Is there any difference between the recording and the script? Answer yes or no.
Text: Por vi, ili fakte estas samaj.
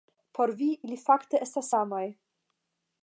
no